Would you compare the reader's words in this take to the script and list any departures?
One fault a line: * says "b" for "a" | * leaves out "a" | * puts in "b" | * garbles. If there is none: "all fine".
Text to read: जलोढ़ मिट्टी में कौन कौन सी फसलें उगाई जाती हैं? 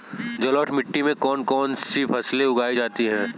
all fine